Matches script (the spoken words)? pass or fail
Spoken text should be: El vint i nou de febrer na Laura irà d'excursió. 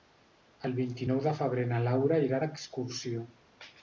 pass